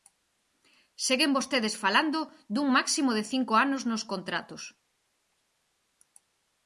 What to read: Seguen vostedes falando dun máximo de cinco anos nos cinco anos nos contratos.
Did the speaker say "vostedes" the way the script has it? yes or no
yes